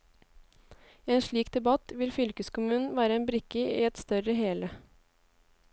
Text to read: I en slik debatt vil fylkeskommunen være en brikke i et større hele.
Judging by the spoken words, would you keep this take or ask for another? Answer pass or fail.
pass